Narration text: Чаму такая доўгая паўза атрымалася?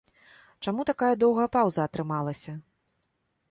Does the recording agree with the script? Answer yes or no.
yes